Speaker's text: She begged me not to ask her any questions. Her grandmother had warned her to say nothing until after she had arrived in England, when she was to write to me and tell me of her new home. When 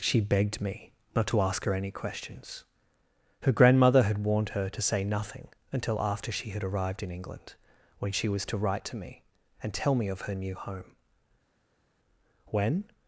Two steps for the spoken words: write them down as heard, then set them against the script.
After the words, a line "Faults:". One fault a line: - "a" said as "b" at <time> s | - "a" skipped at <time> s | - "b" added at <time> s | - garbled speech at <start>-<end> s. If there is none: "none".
She begged me not to ask her any questions. Her grandmother had warned her to say nothing until after she had arrived in England, when she was to write to me and tell me of her new home. When
Faults:
none